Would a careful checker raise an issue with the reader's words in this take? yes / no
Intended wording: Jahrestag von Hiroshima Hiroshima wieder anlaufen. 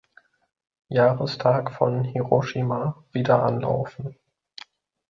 yes